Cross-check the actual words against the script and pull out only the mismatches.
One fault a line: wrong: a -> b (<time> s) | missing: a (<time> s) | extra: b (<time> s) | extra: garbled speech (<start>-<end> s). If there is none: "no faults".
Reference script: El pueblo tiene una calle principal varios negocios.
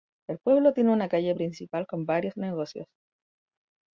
extra: con (1.8 s)